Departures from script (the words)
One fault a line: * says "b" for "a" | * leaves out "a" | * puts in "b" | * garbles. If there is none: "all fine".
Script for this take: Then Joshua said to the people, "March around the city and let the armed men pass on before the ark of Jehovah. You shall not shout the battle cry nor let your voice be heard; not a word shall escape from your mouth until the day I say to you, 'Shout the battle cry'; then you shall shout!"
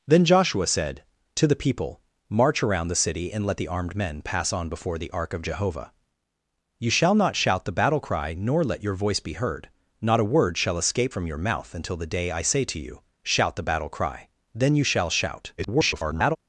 * garbles